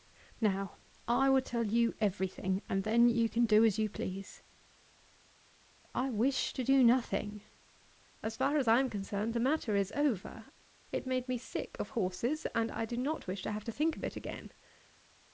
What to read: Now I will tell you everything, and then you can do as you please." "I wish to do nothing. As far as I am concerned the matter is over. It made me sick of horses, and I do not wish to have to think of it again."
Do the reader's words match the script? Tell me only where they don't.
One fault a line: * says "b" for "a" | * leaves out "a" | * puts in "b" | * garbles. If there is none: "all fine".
all fine